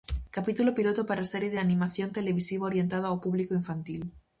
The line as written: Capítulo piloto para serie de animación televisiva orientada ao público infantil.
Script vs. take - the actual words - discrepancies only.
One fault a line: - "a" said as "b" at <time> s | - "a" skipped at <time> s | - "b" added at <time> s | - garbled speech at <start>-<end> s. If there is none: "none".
none